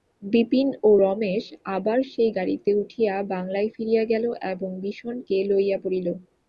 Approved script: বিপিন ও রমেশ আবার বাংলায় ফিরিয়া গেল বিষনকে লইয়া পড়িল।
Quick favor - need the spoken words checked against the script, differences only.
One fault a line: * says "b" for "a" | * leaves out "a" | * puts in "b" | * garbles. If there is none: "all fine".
* puts in "সেই গাড়িতে উঠিয়া"
* puts in "এবং"